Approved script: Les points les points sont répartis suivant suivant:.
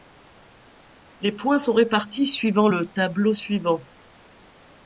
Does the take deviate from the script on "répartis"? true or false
false